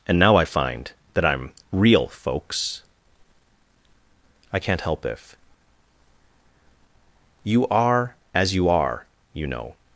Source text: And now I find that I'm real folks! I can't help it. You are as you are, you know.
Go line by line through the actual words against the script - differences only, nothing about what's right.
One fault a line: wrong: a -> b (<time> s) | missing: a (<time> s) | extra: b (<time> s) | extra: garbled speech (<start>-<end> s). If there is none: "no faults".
wrong: it -> if (5.0 s)